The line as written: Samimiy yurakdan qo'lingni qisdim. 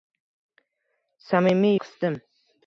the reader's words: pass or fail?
fail